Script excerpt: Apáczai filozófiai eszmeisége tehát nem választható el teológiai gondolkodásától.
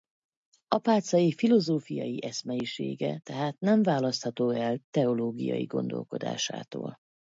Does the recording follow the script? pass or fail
pass